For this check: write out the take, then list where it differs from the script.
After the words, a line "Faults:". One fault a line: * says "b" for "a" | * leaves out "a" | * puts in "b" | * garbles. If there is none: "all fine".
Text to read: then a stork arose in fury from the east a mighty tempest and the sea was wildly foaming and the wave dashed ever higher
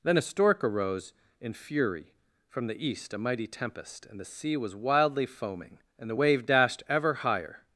then a stork arose in fury from the east a mighty tempest and the sea was wildly foaming and the wave dashed ever higher
Faults:
all fine